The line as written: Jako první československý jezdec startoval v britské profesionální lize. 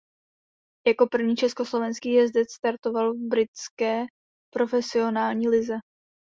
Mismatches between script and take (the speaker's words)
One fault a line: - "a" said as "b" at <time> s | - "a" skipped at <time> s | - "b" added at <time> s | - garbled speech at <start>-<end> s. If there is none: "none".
none